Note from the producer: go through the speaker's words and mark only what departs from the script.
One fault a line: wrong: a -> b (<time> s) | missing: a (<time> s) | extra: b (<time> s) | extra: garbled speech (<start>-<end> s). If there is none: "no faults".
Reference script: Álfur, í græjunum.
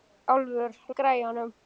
no faults